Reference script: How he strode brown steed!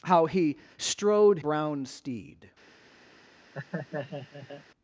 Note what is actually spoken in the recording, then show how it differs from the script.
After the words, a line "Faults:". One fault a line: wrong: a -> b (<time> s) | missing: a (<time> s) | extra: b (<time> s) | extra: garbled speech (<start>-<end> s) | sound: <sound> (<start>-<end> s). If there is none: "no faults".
How he strode brown steed!
Faults:
sound: laugh (3.5-4.6 s)